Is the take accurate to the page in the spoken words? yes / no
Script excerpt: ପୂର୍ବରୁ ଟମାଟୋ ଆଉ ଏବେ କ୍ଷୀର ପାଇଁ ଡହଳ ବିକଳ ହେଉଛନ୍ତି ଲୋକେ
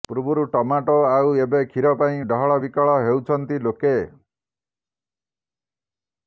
yes